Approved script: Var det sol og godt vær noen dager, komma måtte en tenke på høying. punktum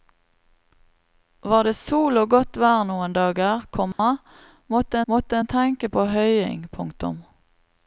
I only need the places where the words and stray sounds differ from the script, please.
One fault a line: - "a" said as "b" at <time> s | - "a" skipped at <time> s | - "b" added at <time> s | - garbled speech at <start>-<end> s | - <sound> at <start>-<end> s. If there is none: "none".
- dropout at 3.9-4.0 s
- "måtte" added at 5.1 s